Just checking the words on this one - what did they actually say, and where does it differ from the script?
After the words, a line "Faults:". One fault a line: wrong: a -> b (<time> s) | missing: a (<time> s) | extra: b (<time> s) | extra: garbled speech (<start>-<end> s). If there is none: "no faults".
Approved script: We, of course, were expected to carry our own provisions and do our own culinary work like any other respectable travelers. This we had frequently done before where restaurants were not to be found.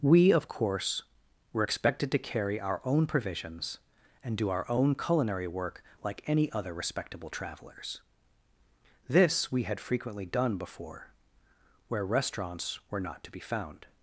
We, of course, were expected to carry our own provisions and do our own culinary work like any other respectable travelers. This we had frequently done before where restaurants were not to be found.
Faults:
no faults